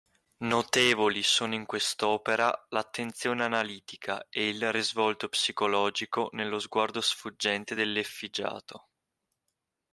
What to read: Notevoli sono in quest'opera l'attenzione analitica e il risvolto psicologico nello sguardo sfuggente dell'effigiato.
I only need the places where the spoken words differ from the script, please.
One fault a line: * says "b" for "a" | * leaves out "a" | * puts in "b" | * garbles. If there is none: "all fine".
all fine